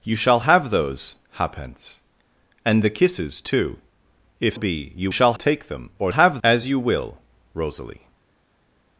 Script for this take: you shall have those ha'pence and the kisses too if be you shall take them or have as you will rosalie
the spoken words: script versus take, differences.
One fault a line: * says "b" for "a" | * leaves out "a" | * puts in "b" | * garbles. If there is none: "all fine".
all fine